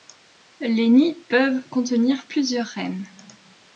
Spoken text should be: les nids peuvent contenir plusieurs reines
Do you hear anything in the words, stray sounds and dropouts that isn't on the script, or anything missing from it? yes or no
no